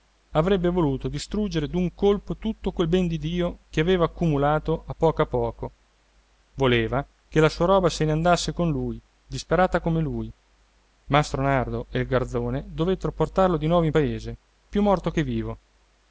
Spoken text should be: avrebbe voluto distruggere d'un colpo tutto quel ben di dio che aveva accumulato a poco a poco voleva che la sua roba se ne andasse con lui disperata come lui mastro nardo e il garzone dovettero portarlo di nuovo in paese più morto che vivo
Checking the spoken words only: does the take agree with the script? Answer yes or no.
yes